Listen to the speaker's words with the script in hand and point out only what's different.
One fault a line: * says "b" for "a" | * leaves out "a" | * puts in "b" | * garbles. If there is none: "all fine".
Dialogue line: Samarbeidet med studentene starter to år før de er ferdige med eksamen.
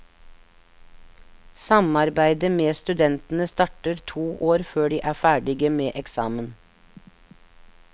all fine